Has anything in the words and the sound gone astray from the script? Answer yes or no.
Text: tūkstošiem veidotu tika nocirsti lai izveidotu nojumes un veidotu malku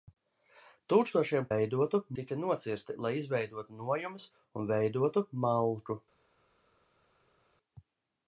no